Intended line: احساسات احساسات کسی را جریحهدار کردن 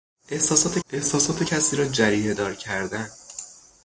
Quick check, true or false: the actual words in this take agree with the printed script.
true